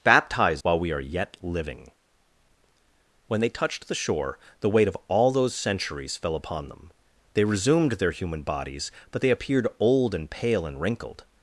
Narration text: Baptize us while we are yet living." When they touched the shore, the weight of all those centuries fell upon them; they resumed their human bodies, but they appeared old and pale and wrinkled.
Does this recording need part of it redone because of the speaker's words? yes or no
yes